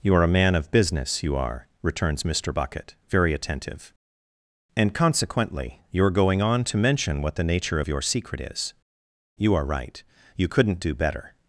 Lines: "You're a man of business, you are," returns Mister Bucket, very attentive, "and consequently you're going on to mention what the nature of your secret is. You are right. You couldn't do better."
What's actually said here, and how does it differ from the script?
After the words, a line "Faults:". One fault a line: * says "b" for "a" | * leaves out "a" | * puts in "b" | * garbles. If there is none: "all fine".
"You're a man of business, you are," returns Mister Bucket, very attentive, "and consequently you're going on to mention what the nature of your secret is. You are right. You couldn't do better."
Faults:
all fine